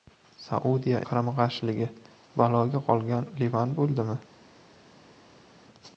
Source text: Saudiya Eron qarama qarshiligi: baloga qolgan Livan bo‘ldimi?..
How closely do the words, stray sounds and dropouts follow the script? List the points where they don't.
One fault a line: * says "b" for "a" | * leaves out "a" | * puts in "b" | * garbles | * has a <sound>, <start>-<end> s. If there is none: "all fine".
* leaves out "Eron"